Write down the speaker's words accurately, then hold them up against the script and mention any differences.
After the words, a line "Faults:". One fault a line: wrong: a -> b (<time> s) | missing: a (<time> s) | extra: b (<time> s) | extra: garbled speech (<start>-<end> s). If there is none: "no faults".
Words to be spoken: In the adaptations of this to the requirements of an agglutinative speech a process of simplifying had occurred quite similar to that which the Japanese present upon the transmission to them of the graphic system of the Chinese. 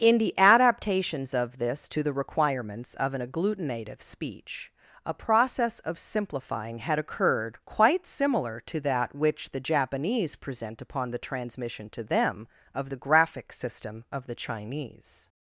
In the adaptations of this to the requirements of an agglutinative speech a process of simplifying had occurred quite similar to that which the Japanese present upon the transmission to them of the graphic system of the Chinese.
Faults:
no faults